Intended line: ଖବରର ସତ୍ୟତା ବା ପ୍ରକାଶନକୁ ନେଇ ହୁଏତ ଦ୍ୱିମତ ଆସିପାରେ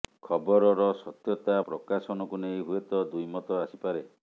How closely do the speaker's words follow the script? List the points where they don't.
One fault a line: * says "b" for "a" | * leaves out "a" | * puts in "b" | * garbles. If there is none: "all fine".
* leaves out "ବା"